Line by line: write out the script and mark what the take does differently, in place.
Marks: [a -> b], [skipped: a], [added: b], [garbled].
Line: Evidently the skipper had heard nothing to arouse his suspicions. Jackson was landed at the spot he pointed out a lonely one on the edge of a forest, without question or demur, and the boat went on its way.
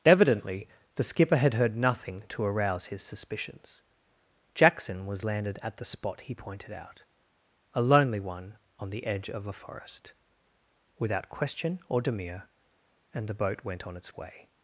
Evidently the skipper had heard nothing to arouse his suspicions. Jackson was landed at the spot he pointed out a lonely one on the edge of a forest, without question or demur, and the boat went on its way.